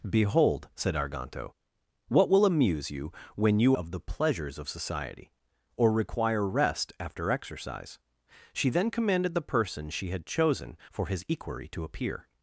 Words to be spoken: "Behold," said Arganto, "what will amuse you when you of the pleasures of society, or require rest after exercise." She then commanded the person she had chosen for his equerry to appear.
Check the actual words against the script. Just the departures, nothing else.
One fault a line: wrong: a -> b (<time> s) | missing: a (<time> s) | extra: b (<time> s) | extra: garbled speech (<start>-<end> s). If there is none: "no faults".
no faults